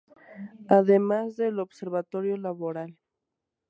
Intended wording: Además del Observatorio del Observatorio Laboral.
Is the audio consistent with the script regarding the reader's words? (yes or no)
no